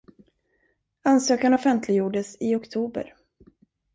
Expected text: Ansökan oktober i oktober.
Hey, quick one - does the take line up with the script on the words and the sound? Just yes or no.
no